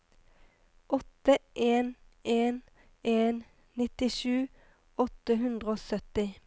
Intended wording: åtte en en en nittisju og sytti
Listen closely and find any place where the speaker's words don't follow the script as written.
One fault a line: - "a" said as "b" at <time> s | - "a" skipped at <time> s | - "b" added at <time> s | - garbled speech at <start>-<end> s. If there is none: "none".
- "åtte hundre" added at 5.0 s